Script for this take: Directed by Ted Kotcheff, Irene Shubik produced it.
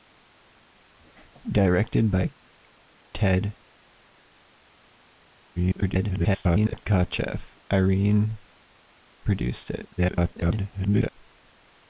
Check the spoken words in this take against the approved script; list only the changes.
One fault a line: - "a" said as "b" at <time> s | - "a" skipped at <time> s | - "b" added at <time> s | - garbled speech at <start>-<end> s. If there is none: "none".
- garbled speech at 5.6-6.8 s
- "Shubik" skipped at 8.4 s
- garbled speech at 10.0-11.1 s